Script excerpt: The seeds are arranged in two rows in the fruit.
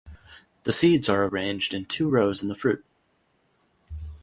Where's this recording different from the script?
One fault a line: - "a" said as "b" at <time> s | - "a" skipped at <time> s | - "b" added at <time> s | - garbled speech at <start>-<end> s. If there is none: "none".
none